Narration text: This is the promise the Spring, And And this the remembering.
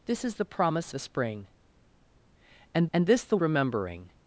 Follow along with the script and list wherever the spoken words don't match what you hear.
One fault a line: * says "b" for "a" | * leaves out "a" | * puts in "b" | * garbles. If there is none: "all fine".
all fine